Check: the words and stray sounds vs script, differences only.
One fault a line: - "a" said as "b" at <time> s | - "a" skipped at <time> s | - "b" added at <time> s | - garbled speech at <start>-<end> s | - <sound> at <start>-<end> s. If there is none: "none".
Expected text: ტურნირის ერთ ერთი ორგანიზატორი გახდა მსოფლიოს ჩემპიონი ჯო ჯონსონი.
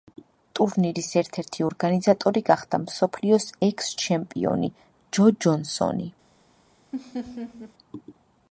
- "ექს" added at 3.7 s
- laugh at 6.9-7.7 s